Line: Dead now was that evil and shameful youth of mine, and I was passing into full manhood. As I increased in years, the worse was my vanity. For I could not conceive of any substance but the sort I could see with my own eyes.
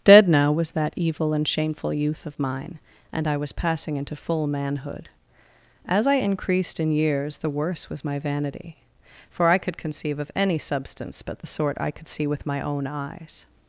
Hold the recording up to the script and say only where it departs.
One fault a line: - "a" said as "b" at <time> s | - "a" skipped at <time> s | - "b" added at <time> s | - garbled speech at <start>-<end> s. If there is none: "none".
- "not" skipped at 9.8 s